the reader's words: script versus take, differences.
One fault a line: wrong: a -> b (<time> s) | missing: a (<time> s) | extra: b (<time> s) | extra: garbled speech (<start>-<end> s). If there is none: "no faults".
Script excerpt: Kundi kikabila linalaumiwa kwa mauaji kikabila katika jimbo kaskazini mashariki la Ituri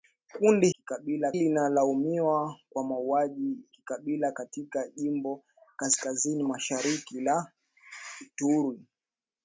no faults